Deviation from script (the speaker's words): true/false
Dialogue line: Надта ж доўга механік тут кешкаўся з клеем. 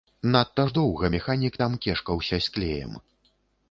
true